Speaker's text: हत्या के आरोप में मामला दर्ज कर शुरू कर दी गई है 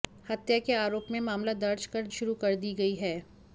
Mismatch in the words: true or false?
false